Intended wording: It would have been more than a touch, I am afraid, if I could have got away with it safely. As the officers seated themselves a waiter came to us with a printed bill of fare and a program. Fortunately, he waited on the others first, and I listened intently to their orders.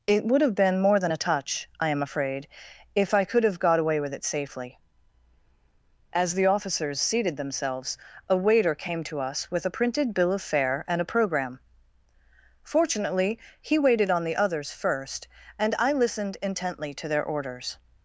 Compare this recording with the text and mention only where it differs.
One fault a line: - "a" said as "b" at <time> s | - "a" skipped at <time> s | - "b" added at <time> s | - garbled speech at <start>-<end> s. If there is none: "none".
none